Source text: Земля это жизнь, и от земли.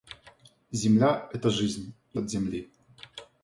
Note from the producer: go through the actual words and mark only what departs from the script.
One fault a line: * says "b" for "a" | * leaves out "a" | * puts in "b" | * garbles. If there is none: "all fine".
all fine